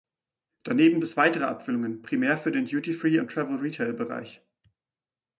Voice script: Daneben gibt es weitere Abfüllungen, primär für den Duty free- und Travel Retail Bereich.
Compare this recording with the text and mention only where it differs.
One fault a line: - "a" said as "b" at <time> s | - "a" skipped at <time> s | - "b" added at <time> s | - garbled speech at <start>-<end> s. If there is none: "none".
- "gibt" skipped at 1.0 s